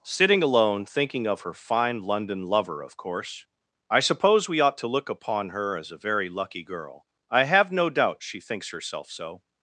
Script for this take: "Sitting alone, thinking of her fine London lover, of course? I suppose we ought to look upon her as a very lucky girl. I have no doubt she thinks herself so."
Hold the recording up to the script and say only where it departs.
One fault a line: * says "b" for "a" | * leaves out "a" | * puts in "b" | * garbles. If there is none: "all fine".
all fine